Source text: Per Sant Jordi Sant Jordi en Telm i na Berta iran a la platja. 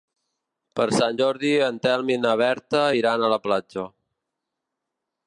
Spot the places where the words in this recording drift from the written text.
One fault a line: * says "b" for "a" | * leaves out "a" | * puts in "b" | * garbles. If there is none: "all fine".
* leaves out "Sant Jordi"